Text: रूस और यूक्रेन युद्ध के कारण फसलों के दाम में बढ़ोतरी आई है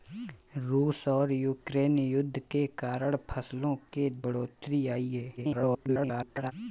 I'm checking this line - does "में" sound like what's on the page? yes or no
no